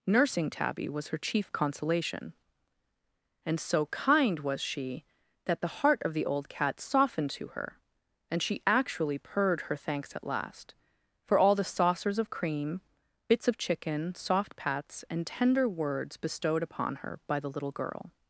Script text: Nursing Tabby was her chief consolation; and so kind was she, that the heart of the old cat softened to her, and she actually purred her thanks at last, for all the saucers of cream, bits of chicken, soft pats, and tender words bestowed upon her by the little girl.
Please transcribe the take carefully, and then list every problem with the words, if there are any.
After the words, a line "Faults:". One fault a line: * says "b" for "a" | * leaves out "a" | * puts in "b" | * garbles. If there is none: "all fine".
Nursing Tabby was her chief consolation; and so kind was she, that the heart of the old cat softened to her, and she actually purred her thanks at last, for all the saucers of cream, bits of chicken, soft pats, and tender words bestowed upon her by the little girl.
Faults:
all fine